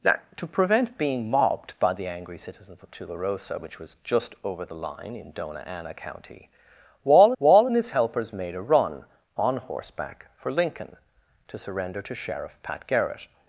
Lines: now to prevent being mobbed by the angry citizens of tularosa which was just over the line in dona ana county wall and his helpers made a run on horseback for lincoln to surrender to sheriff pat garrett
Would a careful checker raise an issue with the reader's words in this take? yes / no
yes